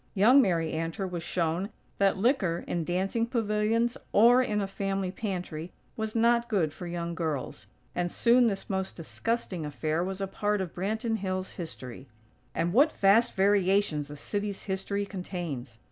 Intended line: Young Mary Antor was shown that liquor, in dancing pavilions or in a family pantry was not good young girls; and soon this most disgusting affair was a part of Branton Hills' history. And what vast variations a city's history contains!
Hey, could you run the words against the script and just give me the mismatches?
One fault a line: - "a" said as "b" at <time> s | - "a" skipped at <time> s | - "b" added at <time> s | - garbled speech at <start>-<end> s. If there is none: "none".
- "for" added at 6.7 s